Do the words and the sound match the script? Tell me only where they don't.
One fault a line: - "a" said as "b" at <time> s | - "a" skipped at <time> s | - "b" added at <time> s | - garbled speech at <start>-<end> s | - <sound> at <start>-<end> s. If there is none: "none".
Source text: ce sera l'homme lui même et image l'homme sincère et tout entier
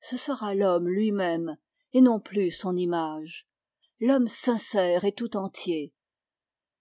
- "non plus son" added at 2.0 s